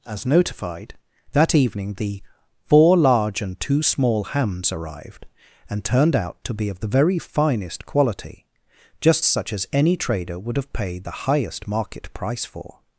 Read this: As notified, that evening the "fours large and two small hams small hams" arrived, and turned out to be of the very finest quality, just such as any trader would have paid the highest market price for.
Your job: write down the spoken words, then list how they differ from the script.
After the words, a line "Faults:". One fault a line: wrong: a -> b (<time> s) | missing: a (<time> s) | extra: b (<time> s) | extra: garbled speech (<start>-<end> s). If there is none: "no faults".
As notified, that evening the "four large and two small hams" arrived, and turned out to be of the very finest quality, just such as any trader would have paid the highest market price for.
Faults:
wrong: fours -> four (2.6 s)
missing: small hams (4.7 s)